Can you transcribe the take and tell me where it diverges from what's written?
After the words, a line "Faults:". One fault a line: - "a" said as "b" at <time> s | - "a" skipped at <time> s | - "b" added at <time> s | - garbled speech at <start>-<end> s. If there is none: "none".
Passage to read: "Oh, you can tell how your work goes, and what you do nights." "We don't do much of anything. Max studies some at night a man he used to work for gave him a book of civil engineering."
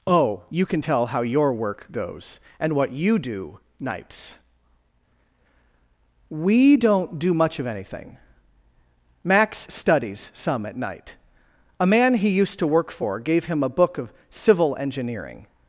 "Oh, you can tell how your work goes, and what you do nights." "We don't do much of anything. Max studies some at night a man he used to work for gave him a book of civil engineering."
Faults:
none